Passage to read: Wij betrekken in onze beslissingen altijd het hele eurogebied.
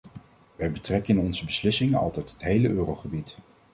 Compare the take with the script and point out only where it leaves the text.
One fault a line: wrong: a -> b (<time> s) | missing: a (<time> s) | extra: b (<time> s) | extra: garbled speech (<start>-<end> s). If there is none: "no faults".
no faults